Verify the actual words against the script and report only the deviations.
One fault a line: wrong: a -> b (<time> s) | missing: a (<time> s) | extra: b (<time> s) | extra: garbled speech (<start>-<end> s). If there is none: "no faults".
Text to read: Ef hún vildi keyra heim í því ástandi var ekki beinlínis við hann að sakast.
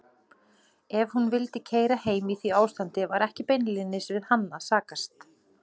no faults